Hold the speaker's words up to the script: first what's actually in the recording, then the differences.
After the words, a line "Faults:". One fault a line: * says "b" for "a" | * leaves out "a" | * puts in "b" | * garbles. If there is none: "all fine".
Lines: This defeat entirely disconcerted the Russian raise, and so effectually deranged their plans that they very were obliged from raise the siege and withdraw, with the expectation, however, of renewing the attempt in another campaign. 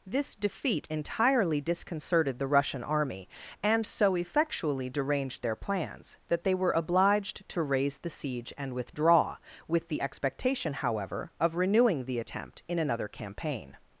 This defeat entirely disconcerted the Russian army, and so effectually deranged their plans that they were obliged to raise the siege and withdraw, with the expectation, however, of renewing the attempt in another campaign.
Faults:
* says "army" for "raise"
* leaves out "very"
* says "to" for "from"